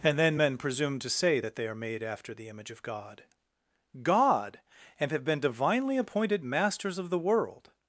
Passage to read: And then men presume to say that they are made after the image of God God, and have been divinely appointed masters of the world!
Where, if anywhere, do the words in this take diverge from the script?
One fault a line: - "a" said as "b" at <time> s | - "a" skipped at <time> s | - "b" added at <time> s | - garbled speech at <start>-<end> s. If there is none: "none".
none